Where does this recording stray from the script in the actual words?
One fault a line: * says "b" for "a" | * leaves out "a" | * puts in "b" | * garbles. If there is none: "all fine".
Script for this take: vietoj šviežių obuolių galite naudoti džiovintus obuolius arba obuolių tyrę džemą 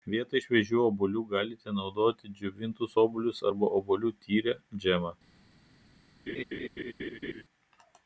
all fine